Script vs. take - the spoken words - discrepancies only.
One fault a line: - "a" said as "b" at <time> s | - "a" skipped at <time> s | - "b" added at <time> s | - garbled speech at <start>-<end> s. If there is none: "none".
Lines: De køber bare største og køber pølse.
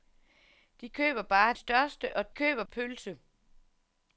none